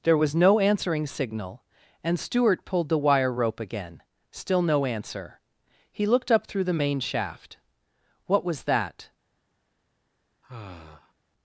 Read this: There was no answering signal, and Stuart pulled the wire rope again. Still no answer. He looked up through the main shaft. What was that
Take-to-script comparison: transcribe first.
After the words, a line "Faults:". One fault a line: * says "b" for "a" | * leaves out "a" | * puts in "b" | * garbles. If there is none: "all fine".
There was no answering signal, and Stuart pulled the wire rope again. Still no answer. He looked up through the main shaft. What was that
Faults:
all fine